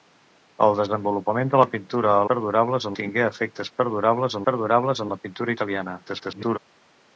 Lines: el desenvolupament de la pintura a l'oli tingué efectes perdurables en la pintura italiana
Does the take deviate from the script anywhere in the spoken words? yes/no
yes